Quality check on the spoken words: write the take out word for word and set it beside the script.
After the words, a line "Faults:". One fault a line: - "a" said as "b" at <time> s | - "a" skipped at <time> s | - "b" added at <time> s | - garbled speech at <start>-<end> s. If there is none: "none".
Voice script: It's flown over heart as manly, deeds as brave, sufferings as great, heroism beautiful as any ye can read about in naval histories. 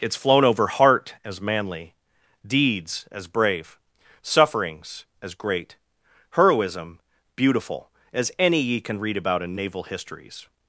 It's flown over heart as manly, deeds as brave, sufferings as great, heroism beautiful as any ye can read about in naval histories.
Faults:
none